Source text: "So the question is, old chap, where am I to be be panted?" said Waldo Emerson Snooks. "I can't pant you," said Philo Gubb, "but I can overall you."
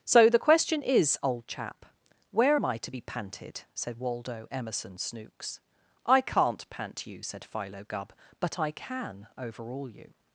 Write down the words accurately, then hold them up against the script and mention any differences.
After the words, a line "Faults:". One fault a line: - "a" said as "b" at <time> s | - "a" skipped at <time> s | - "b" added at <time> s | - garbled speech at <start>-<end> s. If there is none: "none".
"So the question is, old chap, where am I to be panted?" said Waldo Emerson Snooks. "I can't pant you," said Philo Gubb, "but I can overall you."
Faults:
- "be" skipped at 3.0 s